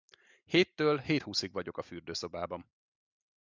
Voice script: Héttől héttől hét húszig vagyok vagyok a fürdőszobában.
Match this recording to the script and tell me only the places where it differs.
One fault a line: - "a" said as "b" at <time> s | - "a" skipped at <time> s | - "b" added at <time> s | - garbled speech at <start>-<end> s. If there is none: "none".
- "héttől" skipped at 1.0 s
- "vagyok" skipped at 1.8 s